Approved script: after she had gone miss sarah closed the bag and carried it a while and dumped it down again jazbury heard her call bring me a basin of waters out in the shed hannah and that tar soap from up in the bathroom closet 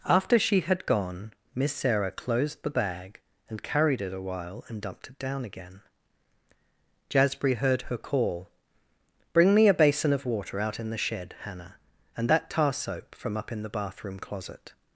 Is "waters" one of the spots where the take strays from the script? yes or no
yes